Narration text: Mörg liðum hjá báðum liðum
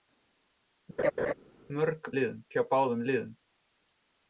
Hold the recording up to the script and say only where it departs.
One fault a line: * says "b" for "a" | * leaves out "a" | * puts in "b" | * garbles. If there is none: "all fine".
all fine